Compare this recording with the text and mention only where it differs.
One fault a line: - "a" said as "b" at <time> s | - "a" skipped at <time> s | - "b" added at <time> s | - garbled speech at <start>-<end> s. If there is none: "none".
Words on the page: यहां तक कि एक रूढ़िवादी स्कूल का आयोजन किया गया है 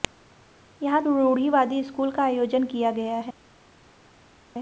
- "तक कि एक" skipped at 1.0 s